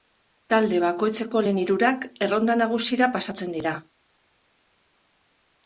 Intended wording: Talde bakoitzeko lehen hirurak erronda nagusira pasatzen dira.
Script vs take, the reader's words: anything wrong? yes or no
no